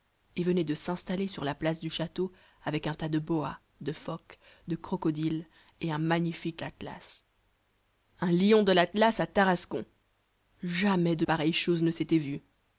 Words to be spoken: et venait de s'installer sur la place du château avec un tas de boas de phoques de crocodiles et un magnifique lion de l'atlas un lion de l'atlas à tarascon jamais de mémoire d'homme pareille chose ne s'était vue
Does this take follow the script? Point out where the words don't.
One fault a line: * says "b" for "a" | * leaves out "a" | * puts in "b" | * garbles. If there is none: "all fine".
* leaves out "lion de"
* leaves out "mémoire d'homme"